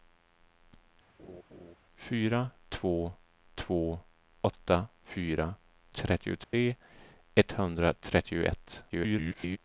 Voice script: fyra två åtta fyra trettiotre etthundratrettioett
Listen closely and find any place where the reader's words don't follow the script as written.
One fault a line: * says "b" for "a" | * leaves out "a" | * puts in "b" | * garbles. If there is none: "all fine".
* puts in "två"
* garbles